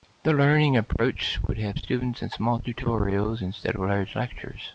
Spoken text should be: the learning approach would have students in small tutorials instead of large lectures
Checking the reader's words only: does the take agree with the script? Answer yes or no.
yes